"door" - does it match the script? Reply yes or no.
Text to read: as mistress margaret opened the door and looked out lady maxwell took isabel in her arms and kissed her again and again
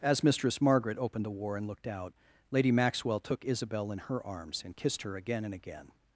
no